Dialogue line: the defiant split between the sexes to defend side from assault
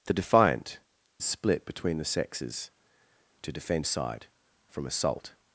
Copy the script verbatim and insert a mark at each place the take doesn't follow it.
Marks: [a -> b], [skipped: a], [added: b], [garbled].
the defiant split between the sexes to defend side from assault